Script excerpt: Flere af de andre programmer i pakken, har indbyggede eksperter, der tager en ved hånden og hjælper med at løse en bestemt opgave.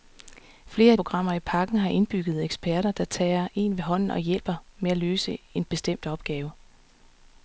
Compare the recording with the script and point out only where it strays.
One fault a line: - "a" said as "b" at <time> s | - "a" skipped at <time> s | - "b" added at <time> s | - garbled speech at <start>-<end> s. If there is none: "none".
- "de andre" skipped at 1.0 s